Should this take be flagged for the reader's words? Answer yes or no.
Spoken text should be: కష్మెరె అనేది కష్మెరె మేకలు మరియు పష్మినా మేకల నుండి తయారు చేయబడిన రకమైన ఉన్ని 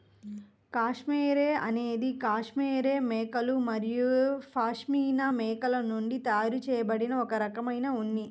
yes